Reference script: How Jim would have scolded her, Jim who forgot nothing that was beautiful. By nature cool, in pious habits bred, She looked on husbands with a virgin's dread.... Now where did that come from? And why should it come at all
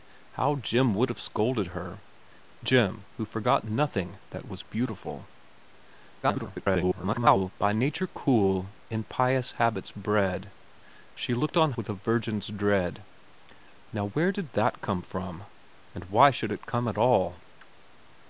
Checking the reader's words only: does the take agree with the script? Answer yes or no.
no